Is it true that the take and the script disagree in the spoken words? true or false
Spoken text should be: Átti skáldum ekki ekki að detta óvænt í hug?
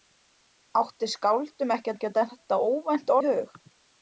false